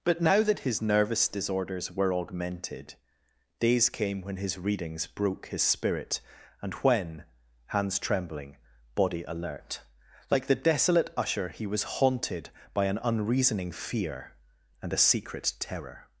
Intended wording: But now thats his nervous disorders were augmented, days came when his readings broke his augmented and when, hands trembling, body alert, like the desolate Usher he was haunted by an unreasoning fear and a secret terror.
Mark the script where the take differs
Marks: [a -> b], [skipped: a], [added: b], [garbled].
But now [thats -> that] his nervous disorders were augmented, days came when his readings broke his [augmented -> spirit] and when, hands trembling, body alert, like the desolate Usher he was haunted by an unreasoning fear and a secret terror.